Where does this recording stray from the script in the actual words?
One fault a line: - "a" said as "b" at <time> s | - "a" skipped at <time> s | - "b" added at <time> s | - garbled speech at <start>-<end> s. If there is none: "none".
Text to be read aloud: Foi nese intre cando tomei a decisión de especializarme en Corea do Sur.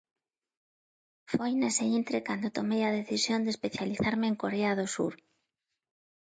none